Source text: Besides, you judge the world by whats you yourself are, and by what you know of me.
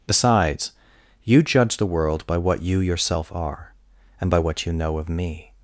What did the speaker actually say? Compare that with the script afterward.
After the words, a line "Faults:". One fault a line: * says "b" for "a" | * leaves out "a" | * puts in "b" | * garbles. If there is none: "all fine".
Besides, you judge the world by what you yourself are, and by what you know of me.
Faults:
* says "what" for "whats"